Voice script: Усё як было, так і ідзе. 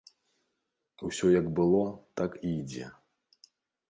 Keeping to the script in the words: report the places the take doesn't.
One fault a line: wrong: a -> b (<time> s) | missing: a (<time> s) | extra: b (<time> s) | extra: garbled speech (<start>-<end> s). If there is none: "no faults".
no faults